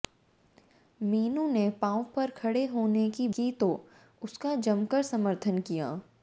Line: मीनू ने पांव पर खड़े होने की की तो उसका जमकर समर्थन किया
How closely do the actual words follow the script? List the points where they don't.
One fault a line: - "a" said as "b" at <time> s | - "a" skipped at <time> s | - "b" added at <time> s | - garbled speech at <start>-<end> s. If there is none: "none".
none